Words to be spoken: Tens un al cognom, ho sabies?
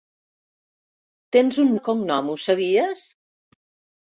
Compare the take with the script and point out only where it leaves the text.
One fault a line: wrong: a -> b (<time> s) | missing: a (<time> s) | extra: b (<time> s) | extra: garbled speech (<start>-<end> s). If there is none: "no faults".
no faults